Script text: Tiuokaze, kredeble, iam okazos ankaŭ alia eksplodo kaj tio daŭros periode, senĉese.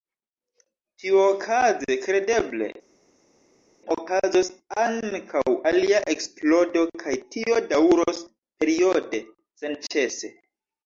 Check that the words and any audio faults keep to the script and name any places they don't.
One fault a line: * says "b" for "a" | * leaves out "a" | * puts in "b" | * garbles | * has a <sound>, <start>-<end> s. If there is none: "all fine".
* leaves out "iam"